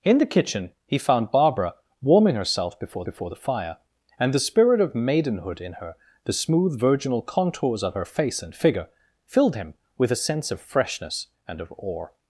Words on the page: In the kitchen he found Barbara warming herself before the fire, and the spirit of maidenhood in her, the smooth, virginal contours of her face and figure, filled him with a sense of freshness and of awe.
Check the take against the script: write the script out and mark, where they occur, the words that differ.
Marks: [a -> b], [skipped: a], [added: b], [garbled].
In the kitchen he found Barbara warming herself before [added: before] the fire, and the spirit of maidenhood in her, the smooth, virginal contours of her face and figure, filled him with a sense of freshness and of awe.